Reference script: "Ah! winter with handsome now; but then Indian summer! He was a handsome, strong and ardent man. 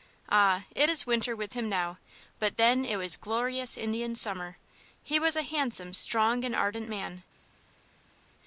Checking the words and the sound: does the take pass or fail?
fail